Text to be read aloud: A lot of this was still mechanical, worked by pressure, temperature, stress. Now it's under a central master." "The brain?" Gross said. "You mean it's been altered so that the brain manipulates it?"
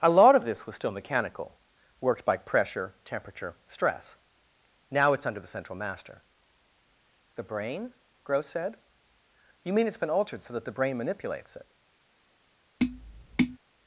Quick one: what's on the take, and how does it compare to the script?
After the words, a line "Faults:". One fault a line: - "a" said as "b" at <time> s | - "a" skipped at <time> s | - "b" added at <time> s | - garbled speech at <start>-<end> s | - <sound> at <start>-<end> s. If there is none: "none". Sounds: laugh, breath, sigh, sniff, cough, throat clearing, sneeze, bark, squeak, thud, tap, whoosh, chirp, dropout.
A lot of this was still mechanical, worked by pressure, temperature, stress. Now it's under the central master." "The brain?" Gross said. "You mean it's been altered so that the brain manipulates it?"
Faults:
- "a" said as "the" at 5.4 s
- tap at 12.8-13.6 s